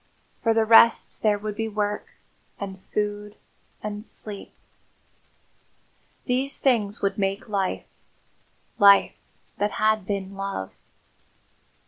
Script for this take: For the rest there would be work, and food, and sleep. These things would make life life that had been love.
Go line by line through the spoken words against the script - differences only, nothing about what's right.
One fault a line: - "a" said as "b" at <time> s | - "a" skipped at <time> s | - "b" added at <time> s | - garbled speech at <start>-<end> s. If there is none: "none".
none